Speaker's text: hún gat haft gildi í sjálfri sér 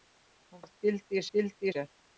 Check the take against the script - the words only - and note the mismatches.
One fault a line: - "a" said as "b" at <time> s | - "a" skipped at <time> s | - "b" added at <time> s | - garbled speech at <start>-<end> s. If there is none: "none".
- "gat" skipped at 0.6 s
- "sjálfri" said as "gildi" at 1.4 s